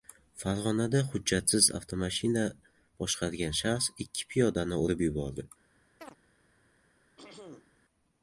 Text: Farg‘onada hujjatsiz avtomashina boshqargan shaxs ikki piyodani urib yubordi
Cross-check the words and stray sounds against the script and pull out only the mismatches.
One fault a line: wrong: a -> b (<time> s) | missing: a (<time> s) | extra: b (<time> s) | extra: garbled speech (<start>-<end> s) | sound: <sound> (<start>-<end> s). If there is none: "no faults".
sound: chirp (6.0-6.2 s)
sound: throat clearing (7.2-7.8 s)